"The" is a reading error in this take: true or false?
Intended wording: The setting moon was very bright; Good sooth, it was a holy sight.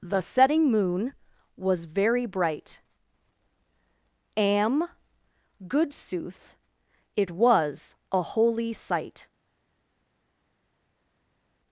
false